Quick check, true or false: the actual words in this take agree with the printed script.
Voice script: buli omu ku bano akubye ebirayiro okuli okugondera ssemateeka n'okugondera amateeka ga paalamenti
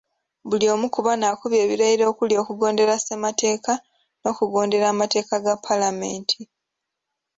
true